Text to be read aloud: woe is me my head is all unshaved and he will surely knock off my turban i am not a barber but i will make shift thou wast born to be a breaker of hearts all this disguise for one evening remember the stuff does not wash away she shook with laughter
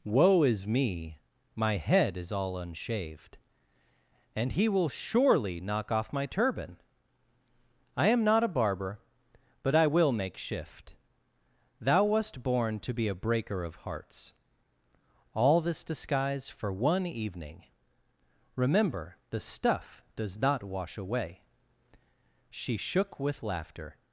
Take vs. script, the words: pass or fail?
pass